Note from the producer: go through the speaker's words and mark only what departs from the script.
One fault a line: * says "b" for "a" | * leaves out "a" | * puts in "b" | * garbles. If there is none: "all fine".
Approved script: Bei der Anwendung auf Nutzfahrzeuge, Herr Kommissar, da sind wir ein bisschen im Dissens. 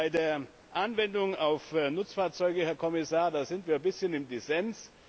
all fine